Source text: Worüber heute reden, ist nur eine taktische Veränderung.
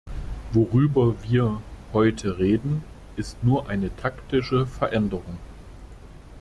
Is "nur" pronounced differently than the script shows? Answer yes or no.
no